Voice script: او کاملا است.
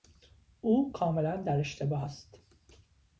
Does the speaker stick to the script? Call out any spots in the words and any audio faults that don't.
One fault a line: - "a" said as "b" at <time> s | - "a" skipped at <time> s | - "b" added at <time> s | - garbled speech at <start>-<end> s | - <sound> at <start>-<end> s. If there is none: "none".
- "در اشتباه" added at 1.4 s